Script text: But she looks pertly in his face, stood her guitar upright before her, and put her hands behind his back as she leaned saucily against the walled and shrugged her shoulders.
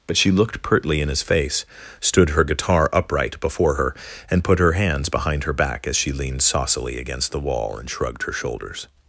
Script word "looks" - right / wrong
wrong